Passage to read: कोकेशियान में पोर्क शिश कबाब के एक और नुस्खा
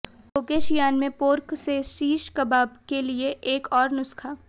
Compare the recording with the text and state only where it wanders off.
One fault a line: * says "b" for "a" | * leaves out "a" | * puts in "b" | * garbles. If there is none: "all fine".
* puts in "से"
* puts in "लिए"